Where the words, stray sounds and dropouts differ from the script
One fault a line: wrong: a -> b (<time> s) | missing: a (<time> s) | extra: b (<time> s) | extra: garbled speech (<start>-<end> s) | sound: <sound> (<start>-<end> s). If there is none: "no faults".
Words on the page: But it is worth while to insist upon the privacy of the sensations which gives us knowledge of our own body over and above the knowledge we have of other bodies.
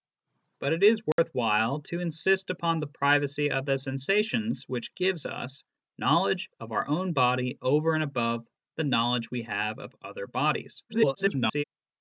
sound: dropout (1.1-1.2 s)
extra: garbled speech (10.9-11.6 s)